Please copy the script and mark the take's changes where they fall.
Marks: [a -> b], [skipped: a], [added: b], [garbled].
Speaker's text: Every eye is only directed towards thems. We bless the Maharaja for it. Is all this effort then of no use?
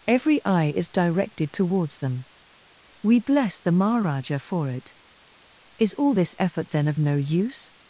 Every eye is [skipped: only] directed towards [thems. -> them] We bless the Maharaja for it. Is all this effort then of no use?